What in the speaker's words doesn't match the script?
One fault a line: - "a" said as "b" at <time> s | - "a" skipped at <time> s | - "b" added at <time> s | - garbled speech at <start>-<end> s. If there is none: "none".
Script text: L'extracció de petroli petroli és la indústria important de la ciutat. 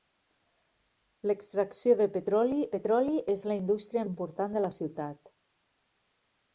none